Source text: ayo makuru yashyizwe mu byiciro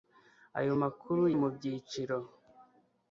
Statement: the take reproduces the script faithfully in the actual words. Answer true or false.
false